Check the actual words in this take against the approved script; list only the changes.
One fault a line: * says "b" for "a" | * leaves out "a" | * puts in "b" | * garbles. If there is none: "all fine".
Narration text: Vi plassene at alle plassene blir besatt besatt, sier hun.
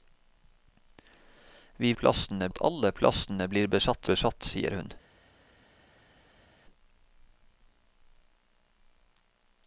all fine